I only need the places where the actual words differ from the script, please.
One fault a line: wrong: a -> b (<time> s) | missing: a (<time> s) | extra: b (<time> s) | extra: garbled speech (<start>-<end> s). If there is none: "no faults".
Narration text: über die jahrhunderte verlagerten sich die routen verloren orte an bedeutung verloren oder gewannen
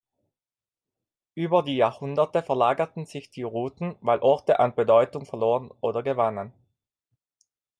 wrong: verloren -> weil (4.0 s)